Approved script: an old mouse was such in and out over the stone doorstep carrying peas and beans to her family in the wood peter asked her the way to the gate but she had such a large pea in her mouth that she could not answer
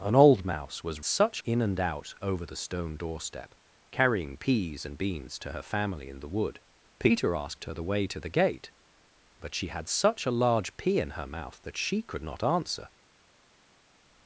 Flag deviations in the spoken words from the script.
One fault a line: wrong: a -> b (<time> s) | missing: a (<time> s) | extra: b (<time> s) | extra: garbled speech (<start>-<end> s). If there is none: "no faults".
no faults